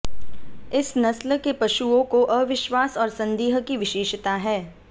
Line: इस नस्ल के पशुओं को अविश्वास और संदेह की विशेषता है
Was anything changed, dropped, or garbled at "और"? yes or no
no